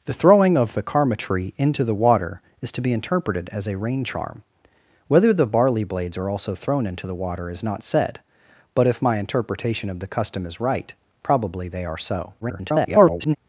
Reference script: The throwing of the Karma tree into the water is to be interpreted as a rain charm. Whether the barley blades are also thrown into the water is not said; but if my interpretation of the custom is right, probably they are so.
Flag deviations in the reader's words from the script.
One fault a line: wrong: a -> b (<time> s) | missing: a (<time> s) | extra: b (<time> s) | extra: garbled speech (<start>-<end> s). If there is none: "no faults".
extra: garbled speech (12.4-13.4 s)